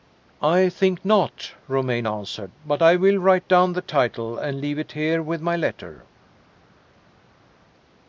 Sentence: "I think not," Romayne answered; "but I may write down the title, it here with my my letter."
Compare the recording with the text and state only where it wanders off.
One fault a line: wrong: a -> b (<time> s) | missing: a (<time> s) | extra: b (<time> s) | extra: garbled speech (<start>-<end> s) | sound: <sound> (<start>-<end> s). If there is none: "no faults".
wrong: may -> will (3.0 s)
extra: and leave (4.4 s)
missing: my (5.6 s)